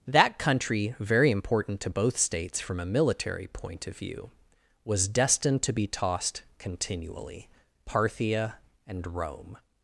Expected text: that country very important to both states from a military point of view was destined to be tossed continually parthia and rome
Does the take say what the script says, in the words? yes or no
yes